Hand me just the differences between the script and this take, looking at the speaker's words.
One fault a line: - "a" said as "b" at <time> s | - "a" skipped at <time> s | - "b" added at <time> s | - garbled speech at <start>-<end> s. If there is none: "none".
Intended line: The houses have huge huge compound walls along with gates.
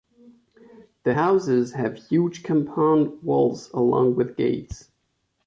- "huge" skipped at 2.4 s